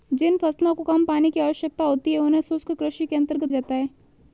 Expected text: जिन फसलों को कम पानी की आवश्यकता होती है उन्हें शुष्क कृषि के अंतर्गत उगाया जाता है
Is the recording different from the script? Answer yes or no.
yes